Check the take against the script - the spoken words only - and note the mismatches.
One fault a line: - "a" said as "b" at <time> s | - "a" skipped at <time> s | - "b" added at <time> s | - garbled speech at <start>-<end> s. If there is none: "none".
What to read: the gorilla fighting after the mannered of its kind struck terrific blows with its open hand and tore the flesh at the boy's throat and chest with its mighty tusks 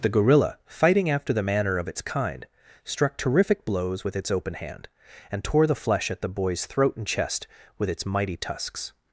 - "mannered" said as "manner" at 1.4 s